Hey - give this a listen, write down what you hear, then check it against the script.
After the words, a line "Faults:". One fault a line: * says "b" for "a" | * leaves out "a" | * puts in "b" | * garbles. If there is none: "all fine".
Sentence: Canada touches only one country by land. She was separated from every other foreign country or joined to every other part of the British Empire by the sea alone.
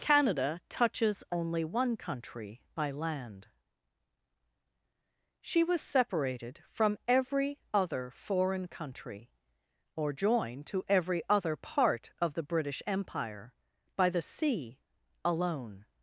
Canada touches only one country by land. She was separated from every other foreign country or joined to every other part of the British Empire by the sea alone.
Faults:
all fine